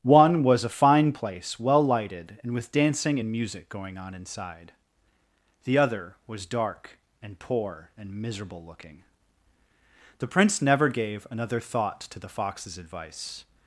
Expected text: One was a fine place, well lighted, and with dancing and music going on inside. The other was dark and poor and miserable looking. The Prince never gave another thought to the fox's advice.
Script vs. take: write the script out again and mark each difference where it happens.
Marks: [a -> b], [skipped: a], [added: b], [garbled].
One was a fine place, well lighted, and with dancing and music going on inside. The other was dark and poor and miserable looking. The Prince never gave another thought to the fox's advice.